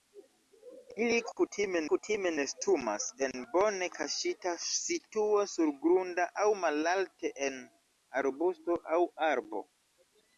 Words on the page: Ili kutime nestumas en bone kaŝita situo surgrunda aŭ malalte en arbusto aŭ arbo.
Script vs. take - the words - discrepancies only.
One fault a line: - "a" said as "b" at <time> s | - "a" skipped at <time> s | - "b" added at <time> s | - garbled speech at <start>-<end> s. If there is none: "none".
- "kutime" added at 1.9 s